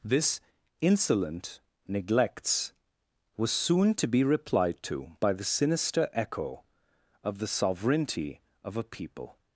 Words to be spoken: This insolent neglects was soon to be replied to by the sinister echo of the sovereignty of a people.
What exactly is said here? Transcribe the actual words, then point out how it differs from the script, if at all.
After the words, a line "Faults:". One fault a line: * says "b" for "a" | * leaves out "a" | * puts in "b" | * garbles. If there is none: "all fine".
This insolent neglects was soon to be replied to by the sinister echo of the sovereignty of a people.
Faults:
all fine